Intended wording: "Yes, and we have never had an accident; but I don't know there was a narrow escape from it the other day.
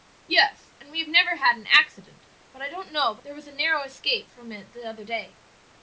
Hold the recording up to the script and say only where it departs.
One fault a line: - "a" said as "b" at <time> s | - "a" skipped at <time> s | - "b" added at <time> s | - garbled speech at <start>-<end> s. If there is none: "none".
- "but" added at 3.1 s